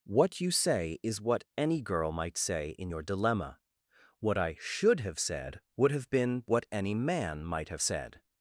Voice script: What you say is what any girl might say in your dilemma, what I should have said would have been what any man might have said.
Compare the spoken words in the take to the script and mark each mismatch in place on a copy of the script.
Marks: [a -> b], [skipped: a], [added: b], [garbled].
What you say is what any girl might say in your dilemma, what I should have said would have been what any man might have said.